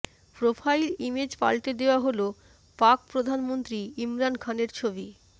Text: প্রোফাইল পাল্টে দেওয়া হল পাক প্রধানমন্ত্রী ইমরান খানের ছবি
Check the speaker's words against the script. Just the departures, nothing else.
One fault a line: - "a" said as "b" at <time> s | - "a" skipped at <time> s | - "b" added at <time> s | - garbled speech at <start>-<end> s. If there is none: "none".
- "ইমেজ" added at 1.0 s